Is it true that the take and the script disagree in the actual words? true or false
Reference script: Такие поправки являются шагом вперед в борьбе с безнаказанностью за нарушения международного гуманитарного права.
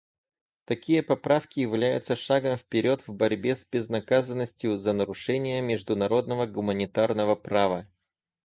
false